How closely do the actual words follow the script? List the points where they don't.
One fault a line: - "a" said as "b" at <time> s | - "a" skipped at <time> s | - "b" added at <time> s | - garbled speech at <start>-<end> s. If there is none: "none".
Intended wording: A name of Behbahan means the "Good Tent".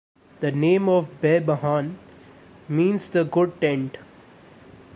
- "A" said as "The" at 0.4 s